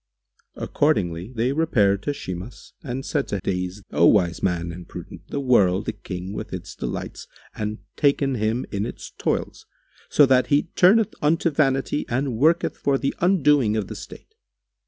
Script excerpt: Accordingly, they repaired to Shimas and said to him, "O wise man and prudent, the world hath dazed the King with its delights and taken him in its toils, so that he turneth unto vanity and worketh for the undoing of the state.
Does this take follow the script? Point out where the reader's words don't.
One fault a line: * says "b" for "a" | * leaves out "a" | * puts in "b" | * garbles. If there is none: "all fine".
* says "dazed" for "him"
* leaves out "hath dazed"